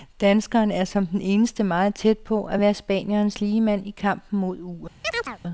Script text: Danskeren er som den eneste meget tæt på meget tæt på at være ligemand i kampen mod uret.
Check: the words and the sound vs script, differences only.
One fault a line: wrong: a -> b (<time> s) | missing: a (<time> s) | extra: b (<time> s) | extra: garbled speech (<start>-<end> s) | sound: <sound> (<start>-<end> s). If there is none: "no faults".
missing: meget tæt på (2.5 s)
extra: spanierens (2.7 s)
sound: chirp (5.0-5.4 s)